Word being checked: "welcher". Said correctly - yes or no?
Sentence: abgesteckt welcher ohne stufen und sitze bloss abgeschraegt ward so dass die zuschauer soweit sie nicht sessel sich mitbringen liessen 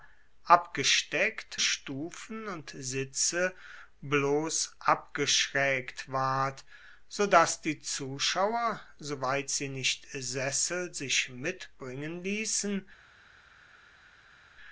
no